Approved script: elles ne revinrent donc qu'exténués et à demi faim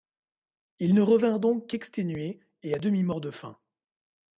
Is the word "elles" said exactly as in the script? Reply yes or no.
no